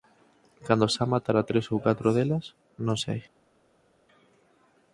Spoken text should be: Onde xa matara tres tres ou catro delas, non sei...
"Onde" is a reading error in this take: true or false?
true